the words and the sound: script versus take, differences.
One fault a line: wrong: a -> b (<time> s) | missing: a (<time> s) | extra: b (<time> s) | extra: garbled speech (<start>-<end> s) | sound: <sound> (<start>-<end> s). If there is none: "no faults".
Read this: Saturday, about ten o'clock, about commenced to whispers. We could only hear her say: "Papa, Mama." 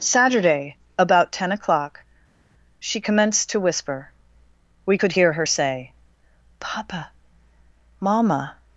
wrong: about -> she (2.8 s)
wrong: whispers -> whisper (3.6 s)
missing: only (5.1 s)